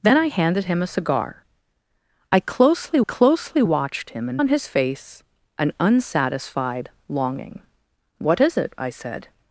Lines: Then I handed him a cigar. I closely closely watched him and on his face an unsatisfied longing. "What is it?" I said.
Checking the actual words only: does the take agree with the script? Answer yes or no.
yes